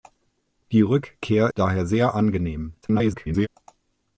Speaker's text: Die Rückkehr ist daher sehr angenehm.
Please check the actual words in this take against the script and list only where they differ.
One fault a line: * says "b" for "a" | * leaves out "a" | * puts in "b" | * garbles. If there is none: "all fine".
* leaves out "ist"
* garbles